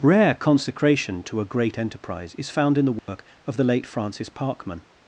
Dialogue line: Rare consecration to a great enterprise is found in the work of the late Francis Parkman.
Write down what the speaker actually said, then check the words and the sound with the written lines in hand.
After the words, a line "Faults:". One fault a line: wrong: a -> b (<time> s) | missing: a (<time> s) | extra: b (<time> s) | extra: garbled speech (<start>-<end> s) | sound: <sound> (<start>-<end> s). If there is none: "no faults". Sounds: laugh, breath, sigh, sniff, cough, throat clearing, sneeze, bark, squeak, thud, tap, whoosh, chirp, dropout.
Rare consecration to a great enterprise is found in the work of the late Francis Parkman.
Faults:
sound: dropout (3.0-3.1 s)